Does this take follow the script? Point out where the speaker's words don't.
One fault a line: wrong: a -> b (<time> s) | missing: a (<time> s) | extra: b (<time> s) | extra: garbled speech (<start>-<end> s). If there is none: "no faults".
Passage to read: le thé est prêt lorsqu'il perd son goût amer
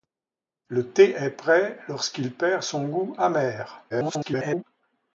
extra: garbled speech (3.9-4.6 s)